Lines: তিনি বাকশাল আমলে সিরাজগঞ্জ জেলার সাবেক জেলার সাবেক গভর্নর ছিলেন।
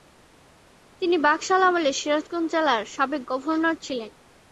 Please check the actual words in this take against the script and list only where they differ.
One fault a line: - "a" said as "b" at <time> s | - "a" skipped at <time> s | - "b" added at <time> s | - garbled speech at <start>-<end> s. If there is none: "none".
- "জেলার সাবেক" skipped at 3.2 s